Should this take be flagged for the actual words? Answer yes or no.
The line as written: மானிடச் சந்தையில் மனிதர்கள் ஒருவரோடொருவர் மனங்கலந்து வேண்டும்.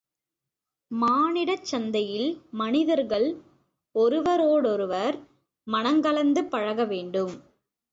yes